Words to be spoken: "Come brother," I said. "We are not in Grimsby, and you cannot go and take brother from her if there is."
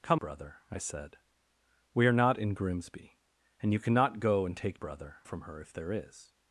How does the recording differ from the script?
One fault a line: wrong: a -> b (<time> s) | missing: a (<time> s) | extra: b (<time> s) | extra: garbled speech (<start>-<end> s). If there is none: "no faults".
no faults